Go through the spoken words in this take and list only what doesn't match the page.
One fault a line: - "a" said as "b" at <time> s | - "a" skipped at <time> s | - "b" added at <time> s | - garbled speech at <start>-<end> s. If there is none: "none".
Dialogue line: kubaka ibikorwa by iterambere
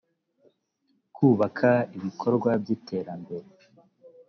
none